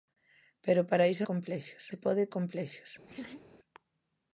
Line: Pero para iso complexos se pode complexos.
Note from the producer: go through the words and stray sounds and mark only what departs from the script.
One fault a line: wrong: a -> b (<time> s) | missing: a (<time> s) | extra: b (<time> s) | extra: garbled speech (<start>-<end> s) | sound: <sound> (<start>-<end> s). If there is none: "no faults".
sound: laugh (3.1-3.5 s)